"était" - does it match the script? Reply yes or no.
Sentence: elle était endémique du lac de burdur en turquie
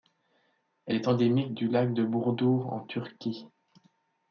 no